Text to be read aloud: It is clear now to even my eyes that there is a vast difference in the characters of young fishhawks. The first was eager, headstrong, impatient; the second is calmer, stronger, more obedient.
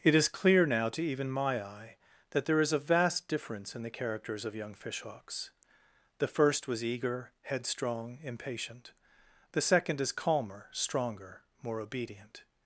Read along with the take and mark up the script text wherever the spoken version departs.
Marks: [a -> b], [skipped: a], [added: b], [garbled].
It is clear now to even my [eyes -> eye] that there is a vast difference in the characters of young fishhawks. The first was eager, headstrong, impatient; the second is calmer, stronger, more obedient.